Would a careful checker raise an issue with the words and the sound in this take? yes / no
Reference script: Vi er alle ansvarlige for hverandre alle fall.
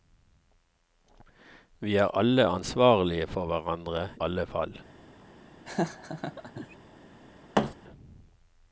yes